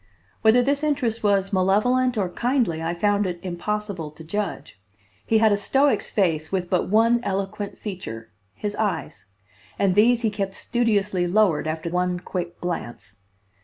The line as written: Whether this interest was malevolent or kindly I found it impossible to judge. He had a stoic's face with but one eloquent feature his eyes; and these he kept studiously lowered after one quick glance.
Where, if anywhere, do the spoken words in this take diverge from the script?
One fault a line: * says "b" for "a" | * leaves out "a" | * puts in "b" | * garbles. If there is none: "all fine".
all fine